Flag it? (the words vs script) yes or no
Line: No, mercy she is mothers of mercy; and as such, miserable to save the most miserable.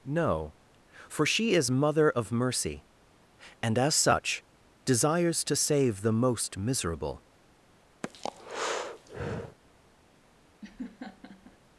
yes